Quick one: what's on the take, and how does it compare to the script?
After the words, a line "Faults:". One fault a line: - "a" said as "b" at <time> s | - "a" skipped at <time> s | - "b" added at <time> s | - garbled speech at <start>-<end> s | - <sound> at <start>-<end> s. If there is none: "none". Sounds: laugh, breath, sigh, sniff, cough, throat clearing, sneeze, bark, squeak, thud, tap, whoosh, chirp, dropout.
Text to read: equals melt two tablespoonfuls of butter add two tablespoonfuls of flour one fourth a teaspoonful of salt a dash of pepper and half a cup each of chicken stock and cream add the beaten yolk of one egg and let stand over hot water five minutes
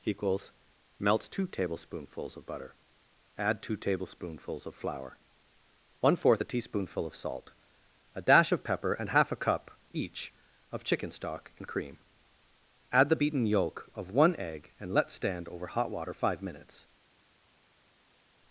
equals melt two tablespoonfuls of butter add two tablespoonfuls of flour one fourth a teaspoonful of salt a dash of pepper and half a cup each of chicken stock and cream add the beaten yolk of one egg and let stand over hot water five minutes
Faults:
none